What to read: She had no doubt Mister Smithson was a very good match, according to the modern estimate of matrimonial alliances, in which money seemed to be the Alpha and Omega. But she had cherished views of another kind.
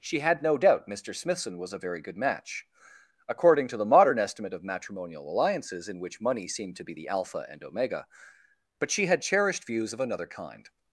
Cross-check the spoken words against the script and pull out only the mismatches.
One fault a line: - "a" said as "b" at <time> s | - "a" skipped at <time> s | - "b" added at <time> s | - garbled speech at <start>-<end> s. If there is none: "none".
none